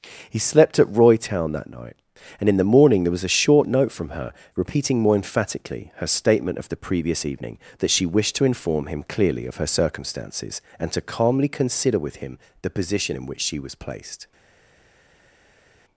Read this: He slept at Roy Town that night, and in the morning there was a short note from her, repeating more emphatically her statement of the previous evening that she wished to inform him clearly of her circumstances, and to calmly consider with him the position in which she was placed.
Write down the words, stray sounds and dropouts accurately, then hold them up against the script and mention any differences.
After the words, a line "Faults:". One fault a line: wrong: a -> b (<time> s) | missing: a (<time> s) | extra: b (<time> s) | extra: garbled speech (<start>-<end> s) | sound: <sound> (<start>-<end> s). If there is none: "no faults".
He slept at Roy Town that night, and in the morning there was a short note from her, repeating more emphatically her statement of the previous evening that she wished to inform him clearly of her circumstances, and to calmly consider with him the position in which she was placed.
Faults:
no faults